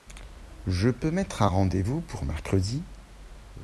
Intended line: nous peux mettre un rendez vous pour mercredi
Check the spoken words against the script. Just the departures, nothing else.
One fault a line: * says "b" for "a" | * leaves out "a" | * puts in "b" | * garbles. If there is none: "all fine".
* says "je" for "nous"